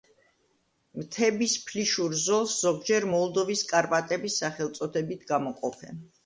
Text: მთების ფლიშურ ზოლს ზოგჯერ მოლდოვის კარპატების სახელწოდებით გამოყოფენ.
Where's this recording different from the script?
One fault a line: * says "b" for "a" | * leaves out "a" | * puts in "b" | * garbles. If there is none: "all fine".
all fine